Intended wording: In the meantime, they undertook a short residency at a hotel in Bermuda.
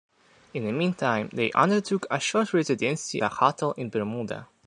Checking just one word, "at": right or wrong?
wrong